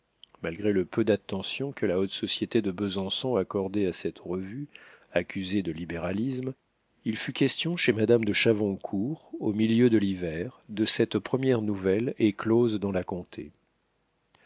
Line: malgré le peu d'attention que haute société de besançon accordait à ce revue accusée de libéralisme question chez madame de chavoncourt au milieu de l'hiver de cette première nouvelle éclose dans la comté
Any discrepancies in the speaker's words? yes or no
yes